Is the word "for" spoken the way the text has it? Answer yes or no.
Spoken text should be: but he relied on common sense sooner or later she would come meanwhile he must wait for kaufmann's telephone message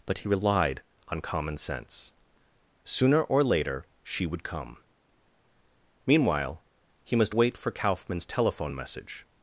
yes